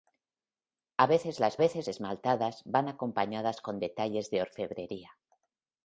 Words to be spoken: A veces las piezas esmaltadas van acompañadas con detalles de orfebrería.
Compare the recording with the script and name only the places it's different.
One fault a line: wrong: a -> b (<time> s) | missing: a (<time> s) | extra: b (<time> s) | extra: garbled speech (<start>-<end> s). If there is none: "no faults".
wrong: piezas -> veces (1.6 s)